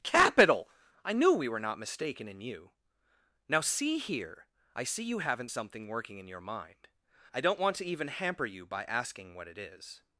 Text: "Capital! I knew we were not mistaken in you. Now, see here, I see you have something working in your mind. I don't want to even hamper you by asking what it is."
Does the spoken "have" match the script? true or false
false